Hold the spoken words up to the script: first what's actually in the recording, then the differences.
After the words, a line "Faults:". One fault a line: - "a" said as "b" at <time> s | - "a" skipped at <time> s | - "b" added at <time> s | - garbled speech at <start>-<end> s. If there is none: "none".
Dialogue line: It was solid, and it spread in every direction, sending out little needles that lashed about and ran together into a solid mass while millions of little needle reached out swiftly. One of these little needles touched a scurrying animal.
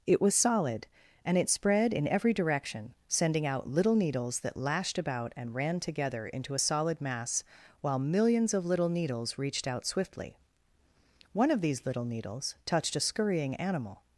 It was solid, and it spread in every direction, sending out little needles that lashed about and ran together into a solid mass while millions of little needles reached out swiftly. One of these little needles touched a scurrying animal.
Faults:
- "needle" said as "needles" at 8.9 s